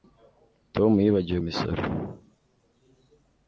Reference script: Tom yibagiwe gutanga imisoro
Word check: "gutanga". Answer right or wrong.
wrong